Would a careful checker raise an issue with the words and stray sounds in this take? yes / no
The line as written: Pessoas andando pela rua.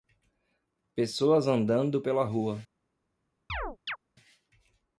yes